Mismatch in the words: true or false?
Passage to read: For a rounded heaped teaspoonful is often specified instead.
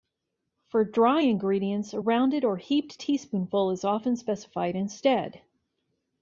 true